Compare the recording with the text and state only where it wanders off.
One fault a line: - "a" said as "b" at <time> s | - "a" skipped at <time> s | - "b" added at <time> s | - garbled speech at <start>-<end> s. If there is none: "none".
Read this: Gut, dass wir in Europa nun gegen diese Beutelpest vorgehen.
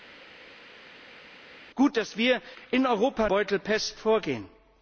- "nun gegen diese" skipped at 3.3 s